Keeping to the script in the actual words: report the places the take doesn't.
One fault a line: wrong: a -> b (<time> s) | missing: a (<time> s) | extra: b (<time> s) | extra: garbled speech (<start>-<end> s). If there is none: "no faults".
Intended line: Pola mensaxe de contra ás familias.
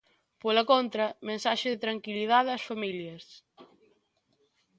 extra: contra (0.7 s)
wrong: contra -> tranquilidade (1.8 s)